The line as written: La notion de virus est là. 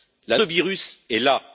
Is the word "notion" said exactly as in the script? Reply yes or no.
no